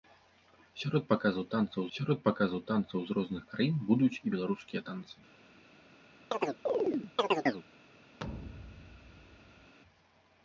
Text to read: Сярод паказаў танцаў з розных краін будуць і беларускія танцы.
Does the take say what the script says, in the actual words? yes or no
no